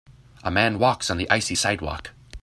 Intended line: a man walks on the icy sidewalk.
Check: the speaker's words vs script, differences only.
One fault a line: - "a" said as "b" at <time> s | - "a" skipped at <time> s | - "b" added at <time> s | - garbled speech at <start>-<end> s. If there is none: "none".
none